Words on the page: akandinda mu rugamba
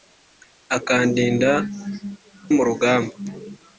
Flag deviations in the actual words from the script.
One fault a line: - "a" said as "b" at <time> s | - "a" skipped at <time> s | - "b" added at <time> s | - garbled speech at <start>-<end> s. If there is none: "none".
none